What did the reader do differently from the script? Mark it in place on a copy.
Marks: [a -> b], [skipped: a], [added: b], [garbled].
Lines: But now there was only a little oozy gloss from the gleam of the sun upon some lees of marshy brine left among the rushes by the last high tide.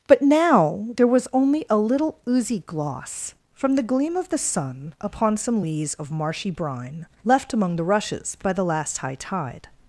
But now there was only a little oozy gloss from the gleam of the sun upon some lees of marshy brine left among the rushes by the last high tide.